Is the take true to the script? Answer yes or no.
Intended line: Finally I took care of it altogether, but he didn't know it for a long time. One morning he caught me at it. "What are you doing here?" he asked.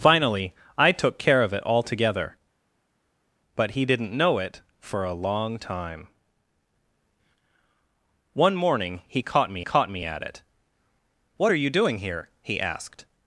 no